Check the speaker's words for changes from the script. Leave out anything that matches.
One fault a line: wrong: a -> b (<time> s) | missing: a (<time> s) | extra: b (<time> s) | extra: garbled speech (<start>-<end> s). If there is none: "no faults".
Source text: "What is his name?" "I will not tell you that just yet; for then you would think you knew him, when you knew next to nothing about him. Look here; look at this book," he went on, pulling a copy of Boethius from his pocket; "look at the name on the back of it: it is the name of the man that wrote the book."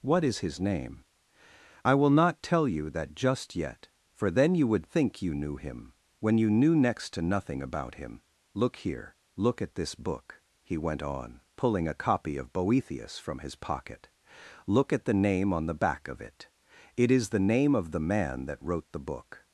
no faults